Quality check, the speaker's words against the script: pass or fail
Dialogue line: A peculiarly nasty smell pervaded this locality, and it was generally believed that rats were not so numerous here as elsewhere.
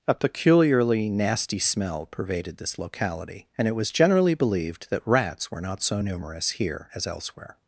pass